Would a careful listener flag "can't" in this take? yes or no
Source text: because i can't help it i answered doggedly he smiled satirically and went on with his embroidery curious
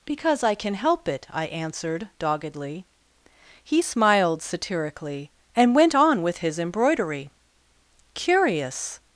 yes